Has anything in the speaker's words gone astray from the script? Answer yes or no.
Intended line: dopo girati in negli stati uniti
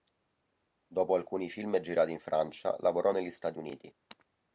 yes